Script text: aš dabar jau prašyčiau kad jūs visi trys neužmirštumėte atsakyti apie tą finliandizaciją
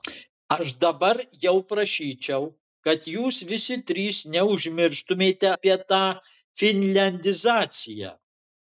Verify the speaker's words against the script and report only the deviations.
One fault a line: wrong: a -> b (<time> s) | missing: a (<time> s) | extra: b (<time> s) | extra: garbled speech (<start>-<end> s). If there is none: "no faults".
missing: atsakyti (5.5 s)